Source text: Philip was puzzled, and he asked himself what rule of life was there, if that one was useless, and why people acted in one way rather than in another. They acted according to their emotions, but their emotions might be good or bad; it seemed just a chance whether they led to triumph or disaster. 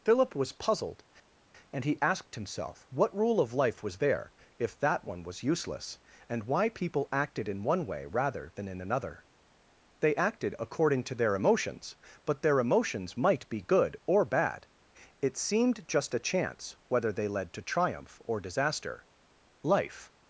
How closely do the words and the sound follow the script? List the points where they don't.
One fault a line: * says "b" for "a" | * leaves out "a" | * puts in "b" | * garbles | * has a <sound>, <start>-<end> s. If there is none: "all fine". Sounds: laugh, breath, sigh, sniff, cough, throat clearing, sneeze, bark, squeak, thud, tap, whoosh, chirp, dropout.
* puts in "Life"